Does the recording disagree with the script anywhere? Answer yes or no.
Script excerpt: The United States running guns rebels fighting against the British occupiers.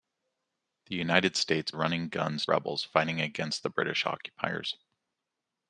no